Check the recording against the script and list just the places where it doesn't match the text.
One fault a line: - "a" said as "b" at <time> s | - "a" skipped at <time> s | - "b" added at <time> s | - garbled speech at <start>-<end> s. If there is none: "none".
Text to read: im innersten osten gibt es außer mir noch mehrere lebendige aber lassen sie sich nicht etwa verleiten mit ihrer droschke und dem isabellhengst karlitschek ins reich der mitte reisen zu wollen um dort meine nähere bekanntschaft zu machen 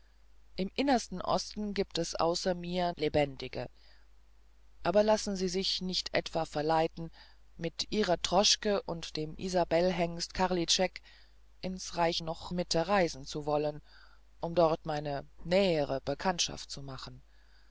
- "noch mehrere" skipped at 2.9 s
- "der" said as "noch" at 12.2 s